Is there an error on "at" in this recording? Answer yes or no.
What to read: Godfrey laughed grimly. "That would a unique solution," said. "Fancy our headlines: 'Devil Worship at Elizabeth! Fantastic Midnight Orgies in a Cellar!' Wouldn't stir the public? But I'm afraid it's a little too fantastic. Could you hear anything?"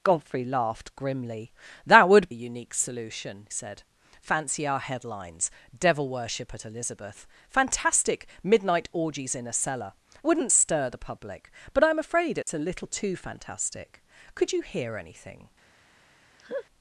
no